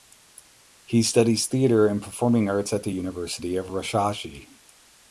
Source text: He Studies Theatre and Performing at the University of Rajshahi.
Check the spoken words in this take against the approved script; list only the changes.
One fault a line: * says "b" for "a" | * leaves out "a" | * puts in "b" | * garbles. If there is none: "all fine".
* puts in "arts"